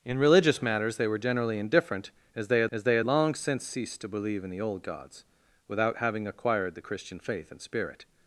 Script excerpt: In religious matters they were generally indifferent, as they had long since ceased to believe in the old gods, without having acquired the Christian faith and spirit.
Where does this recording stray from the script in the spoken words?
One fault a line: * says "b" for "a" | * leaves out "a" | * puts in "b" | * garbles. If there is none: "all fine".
* puts in "as they had"